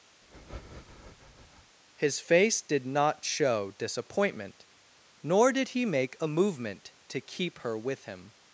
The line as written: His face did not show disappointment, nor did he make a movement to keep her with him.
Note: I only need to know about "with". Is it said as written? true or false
true